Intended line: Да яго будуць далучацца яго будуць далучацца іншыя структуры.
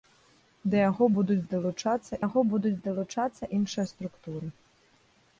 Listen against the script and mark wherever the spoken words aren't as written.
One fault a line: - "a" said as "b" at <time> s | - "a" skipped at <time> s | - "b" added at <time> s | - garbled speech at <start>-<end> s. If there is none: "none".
none